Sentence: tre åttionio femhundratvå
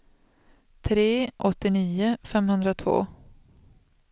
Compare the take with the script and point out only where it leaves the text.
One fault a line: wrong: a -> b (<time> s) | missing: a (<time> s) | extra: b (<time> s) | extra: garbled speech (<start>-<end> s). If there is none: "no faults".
no faults